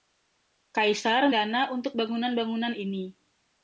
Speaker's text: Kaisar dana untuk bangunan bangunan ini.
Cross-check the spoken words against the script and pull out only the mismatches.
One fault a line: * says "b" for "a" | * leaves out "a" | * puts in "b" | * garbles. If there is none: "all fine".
all fine